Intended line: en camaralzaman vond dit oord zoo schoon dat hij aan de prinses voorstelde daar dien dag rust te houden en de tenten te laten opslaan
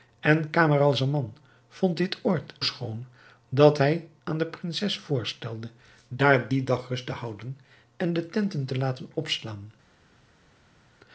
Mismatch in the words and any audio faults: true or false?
true